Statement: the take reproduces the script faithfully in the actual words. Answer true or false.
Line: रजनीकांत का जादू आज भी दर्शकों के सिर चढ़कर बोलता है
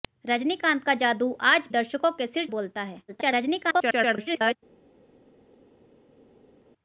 false